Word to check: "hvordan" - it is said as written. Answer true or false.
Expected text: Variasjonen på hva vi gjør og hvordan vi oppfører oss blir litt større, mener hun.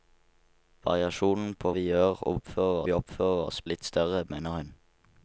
false